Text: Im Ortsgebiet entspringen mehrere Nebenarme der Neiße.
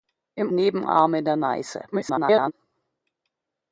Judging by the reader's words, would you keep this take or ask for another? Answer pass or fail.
fail